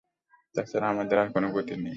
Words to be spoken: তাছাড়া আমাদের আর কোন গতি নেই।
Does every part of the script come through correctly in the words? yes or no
yes